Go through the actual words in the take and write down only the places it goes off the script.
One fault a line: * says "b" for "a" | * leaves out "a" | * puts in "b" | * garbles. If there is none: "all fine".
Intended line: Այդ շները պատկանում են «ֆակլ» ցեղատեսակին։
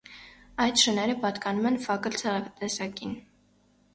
all fine